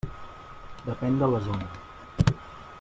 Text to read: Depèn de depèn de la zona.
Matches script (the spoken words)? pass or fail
fail